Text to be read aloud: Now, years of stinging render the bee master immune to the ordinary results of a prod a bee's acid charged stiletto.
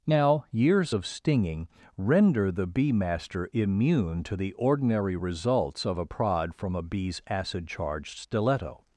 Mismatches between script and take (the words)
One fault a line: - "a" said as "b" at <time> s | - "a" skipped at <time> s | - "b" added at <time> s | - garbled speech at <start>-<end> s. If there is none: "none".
- "from" added at 6.5 s